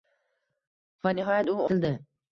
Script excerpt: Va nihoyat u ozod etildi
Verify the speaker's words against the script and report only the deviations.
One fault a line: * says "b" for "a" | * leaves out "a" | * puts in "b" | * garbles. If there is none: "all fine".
* leaves out "ozod"